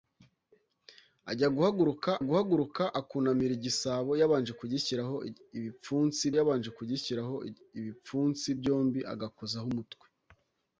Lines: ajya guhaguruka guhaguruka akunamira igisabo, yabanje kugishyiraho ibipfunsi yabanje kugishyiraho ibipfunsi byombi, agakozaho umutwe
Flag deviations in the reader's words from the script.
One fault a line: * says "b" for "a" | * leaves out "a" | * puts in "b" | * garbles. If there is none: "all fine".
all fine